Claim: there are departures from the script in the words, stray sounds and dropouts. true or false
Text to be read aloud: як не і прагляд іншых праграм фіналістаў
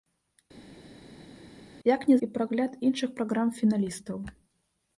false